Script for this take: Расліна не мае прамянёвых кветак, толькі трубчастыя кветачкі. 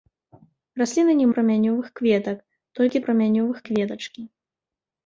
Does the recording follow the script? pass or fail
fail